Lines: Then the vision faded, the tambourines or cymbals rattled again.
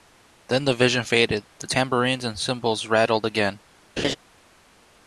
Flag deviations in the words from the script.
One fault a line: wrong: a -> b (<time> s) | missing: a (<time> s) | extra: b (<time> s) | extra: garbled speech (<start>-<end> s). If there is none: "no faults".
wrong: or -> and (2.2 s)